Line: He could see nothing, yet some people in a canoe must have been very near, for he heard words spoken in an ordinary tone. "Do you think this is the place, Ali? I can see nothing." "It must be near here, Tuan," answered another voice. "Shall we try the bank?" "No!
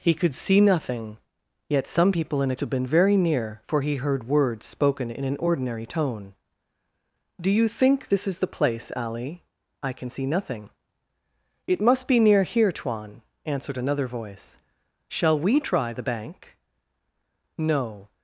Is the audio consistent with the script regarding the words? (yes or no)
no